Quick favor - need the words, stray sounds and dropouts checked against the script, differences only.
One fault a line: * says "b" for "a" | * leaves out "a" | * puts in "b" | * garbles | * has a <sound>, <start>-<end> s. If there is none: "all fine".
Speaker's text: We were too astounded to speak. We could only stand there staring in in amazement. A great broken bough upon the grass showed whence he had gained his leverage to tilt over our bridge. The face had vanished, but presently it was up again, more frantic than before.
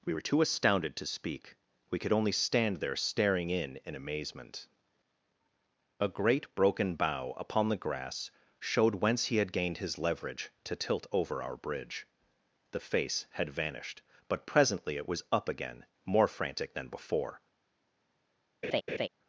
* has a laugh, 18.6-19.1 s